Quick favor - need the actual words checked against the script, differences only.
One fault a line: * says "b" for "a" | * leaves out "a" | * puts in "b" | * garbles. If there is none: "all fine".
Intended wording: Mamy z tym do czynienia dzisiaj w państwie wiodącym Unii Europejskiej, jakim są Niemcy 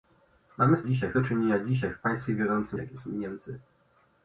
* says "dzisiaj" for "tym"
* leaves out "Unii Europejskiej"